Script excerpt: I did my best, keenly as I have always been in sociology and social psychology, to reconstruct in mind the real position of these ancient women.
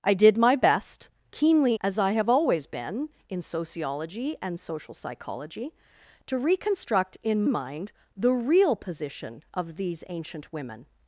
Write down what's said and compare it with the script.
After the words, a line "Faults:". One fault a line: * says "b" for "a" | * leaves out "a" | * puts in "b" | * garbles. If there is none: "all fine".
I did my best, keenly as I have always been in sociology and social psychology, to reconstruct in mind the real position of these ancient women.
Faults:
all fine